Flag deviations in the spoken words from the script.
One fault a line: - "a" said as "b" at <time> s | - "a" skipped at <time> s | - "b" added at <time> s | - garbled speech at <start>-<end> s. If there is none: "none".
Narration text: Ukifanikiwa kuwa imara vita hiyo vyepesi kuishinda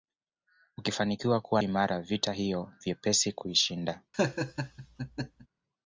none